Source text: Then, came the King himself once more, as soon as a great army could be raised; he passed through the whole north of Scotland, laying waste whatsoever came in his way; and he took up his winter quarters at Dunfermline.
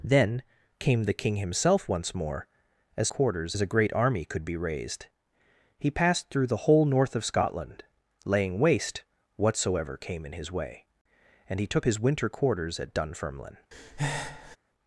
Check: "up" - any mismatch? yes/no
yes